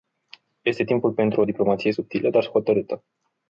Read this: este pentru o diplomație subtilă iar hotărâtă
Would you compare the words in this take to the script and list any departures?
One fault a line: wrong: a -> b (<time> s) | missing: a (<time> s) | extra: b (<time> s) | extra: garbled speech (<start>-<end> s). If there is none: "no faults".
extra: timpul (0.8 s)
wrong: iar -> dar (2.3 s)